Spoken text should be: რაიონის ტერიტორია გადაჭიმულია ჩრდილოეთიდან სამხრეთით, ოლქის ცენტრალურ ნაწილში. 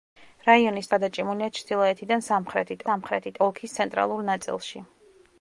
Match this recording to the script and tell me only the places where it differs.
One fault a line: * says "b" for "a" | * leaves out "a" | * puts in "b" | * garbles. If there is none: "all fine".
* leaves out "ტერიტორია"
* puts in "სამხრეთით"